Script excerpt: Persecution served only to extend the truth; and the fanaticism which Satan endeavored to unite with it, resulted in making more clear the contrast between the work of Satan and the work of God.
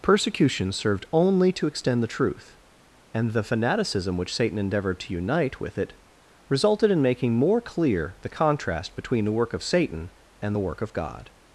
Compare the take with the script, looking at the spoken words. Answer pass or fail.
pass